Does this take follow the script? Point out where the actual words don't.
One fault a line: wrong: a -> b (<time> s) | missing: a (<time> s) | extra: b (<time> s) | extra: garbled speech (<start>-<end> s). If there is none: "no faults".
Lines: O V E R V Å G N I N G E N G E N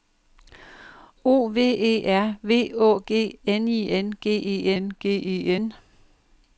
no faults